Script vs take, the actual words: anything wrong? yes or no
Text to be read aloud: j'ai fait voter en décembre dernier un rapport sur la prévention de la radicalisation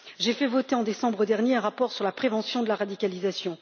no